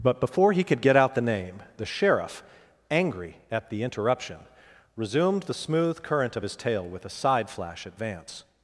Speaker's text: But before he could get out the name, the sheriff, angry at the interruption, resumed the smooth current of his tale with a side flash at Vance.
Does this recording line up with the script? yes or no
yes